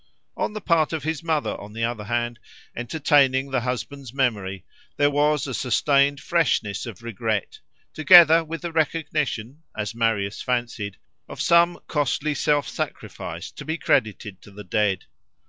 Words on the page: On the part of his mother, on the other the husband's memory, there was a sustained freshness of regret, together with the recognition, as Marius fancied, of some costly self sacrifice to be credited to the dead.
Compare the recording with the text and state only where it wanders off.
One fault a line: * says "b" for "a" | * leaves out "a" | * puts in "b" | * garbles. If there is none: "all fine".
* puts in "hand entertaining"